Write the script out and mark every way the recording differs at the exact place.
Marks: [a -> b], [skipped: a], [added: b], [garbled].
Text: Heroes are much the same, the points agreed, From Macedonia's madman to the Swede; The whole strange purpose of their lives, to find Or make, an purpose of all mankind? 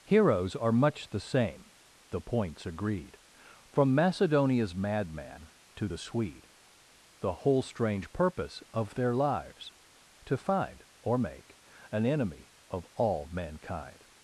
Heroes are much the same, the points agreed, From Macedonia's madman to the Swede; The whole strange purpose of their lives, to find Or make, an [purpose -> enemy] of all mankind?